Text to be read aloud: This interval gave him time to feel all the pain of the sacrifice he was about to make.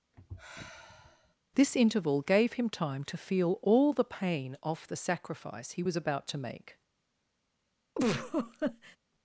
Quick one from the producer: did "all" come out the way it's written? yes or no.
yes